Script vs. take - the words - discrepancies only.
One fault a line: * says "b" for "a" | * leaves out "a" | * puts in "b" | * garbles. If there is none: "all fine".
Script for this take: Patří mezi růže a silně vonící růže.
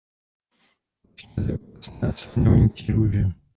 * says "okrasné" for "růže"